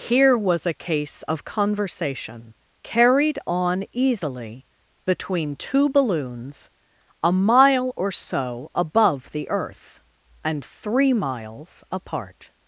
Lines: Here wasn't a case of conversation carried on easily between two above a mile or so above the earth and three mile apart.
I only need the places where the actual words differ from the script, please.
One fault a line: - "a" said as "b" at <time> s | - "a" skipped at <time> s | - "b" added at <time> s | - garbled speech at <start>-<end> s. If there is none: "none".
- "wasn't" said as "was" at 0.3 s
- "above" said as "balloons" at 5.9 s
- "mile" said as "miles" at 11.1 s